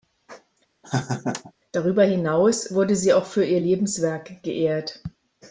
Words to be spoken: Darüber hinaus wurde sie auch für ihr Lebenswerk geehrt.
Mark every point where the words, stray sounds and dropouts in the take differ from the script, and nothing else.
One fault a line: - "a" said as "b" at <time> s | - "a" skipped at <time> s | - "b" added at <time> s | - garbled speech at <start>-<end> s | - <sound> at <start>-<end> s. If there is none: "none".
- laugh at 0.8-1.5 s